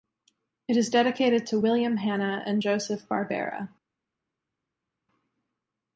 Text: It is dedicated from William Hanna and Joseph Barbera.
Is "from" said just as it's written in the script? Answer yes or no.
no